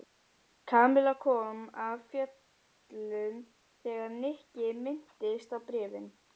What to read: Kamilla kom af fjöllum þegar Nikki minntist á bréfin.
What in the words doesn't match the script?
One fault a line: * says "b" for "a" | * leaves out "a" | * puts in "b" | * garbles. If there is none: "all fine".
all fine